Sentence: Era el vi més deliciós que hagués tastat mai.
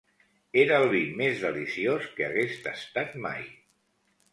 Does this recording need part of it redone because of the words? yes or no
no